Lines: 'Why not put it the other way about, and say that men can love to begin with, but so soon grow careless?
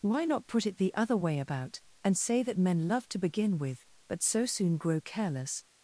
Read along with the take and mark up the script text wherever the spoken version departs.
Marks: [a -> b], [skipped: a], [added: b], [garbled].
'Why not put it the other way about, and say that men [skipped: can] love to begin with, but so soon grow careless?